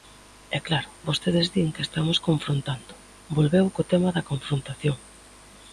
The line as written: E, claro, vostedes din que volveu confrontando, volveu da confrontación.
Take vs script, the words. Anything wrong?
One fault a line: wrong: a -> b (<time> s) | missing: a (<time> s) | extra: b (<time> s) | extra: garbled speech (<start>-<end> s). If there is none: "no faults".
wrong: volveu -> estamos (1.9 s)
extra: co tema (3.7 s)